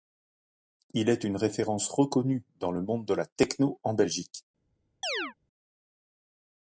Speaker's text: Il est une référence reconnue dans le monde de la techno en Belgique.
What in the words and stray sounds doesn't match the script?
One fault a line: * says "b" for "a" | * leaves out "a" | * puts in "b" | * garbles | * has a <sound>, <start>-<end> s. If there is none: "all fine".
* has a chirp, 5.0-5.3 s